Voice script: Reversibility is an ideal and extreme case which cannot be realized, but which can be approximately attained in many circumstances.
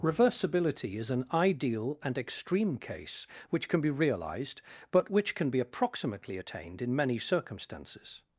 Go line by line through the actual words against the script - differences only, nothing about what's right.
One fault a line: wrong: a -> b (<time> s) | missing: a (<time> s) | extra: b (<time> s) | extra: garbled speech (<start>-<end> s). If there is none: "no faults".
wrong: cannot -> can (3.7 s)